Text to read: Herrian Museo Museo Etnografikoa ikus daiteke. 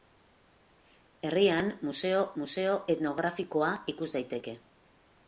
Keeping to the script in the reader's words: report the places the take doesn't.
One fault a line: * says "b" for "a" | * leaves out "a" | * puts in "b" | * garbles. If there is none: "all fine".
all fine